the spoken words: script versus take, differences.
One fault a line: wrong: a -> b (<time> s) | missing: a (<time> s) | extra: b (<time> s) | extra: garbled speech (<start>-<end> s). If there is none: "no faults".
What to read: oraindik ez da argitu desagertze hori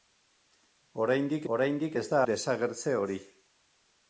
extra: oraindik (1.5 s)
missing: argitu (2.2 s)